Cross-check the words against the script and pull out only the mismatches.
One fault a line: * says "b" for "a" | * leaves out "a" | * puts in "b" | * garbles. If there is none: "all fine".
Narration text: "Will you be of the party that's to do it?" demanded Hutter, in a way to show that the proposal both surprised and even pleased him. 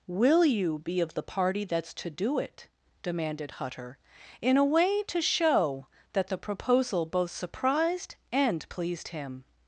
* leaves out "even"